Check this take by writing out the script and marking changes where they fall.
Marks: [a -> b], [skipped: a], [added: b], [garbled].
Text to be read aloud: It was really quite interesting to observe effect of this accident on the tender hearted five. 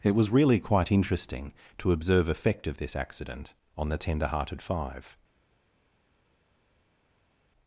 It was really quite interesting to observe effect of this accident on the tender hearted five.